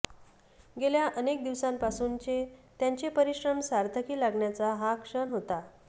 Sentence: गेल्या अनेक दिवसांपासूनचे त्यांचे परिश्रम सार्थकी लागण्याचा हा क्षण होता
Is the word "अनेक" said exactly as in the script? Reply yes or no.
yes